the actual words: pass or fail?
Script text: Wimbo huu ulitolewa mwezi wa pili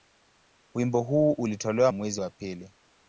pass